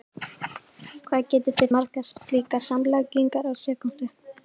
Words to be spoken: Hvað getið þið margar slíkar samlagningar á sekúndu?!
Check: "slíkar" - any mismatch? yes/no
no